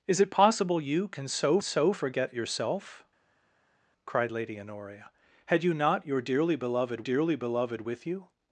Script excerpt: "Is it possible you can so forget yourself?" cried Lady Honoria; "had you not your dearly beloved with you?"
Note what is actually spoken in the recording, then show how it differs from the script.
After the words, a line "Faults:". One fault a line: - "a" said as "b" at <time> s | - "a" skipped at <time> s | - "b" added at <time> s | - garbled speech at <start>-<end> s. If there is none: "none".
"Is it possible you can so so forget yourself?" cried Lady Honoria; "had you not your dearly beloved dearly beloved with you?"
Faults:
- "so" added at 1.6 s
- "dearly beloved" added at 7.0 s